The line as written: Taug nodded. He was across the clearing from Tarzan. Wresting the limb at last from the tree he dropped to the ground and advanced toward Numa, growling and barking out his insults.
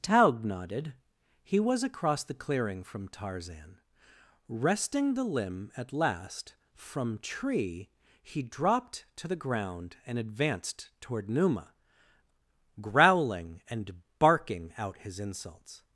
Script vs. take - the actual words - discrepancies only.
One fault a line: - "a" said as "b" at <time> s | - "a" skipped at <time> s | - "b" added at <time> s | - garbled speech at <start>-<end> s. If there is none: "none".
- "the" skipped at 7.2 s